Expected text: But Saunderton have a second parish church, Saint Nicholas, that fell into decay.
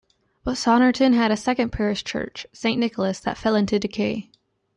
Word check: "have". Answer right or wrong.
wrong